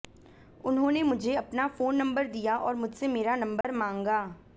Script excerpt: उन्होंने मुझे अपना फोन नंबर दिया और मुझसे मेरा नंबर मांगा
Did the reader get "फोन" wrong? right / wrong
right